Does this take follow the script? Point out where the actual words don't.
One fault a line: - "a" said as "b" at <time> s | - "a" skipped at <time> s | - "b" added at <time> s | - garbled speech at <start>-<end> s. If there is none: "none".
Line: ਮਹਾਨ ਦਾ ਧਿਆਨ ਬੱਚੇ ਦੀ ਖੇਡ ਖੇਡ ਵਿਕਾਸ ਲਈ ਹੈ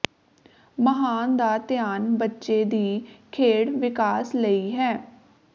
- "ਖੇਡ" skipped at 3.7 s